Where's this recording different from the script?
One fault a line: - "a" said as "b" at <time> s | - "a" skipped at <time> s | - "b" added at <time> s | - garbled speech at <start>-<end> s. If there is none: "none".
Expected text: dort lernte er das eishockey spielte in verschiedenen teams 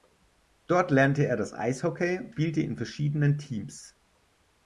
none